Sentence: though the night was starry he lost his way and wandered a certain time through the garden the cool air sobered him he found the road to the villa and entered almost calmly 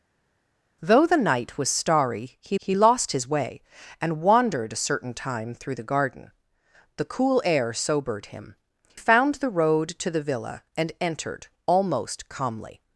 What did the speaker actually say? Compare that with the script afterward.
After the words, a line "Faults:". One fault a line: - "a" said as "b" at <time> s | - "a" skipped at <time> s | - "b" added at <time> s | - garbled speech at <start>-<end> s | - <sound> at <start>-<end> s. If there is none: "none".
though the night was starry he he lost his way and wandered a certain time through the garden the cool air sobered him found the road to the villa and entered almost calmly
Faults:
- "he" added at 2.6 s
- "he" skipped at 8.6 s